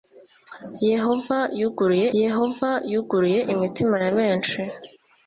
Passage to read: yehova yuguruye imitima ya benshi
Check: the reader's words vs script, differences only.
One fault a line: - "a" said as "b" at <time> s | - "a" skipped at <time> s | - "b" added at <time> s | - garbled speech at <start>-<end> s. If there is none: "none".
- "yehova yuguruye" added at 2.2 s